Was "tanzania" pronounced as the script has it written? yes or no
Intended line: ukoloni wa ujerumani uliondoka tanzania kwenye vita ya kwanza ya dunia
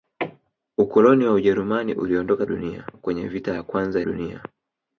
no